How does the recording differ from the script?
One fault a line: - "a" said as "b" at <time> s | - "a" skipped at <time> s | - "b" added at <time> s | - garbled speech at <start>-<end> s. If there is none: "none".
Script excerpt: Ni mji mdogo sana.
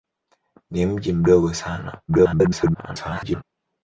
- garbled speech at 2.1-3.4 s